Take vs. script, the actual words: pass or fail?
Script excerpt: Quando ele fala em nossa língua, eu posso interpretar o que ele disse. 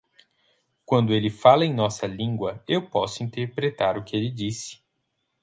pass